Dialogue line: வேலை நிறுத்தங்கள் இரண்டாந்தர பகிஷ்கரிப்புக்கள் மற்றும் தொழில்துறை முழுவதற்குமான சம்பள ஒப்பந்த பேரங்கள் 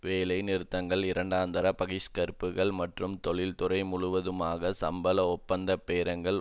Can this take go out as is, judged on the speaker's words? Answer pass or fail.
pass